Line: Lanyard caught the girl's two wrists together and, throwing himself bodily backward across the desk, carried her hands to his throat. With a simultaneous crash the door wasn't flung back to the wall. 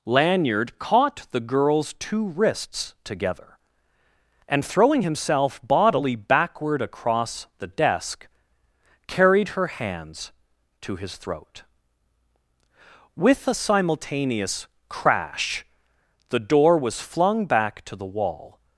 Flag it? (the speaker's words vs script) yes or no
yes